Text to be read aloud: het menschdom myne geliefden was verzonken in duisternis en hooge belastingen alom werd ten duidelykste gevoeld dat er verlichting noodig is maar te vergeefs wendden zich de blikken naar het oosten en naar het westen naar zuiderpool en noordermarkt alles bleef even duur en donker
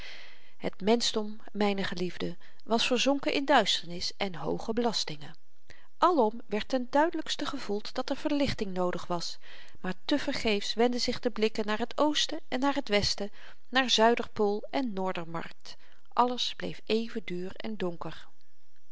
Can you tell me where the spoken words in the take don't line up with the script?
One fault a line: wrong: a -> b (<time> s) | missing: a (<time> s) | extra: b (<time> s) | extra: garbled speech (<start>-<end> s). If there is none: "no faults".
wrong: is -> was (9.1 s)